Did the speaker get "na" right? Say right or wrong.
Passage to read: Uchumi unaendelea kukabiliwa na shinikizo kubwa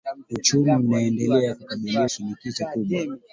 wrong